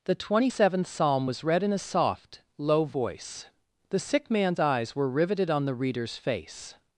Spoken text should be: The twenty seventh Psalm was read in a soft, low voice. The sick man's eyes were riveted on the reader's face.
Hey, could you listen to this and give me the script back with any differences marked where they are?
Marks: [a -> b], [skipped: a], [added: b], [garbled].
The twenty seventh Psalm was read in a soft, low voice. The sick man's eyes were riveted on the reader's face.